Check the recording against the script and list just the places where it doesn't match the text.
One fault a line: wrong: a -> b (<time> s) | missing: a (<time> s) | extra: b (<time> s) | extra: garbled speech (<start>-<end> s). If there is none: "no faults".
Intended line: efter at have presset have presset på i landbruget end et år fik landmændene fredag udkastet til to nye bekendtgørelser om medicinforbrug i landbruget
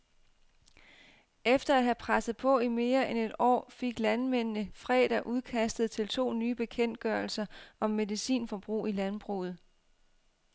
missing: have presset (2.4 s)
wrong: landbruget -> mere (2.7 s)